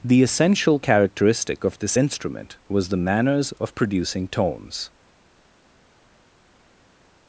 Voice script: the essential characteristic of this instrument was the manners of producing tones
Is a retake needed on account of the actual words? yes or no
no